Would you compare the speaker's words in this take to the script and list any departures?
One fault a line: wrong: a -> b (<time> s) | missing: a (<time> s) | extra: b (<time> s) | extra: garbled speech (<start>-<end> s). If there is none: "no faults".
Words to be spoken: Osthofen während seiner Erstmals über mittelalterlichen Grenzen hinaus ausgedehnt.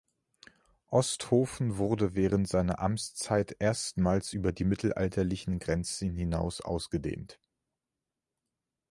extra: wurde (1.8 s)
extra: Amtszeit (2.8 s)
extra: die (4.5 s)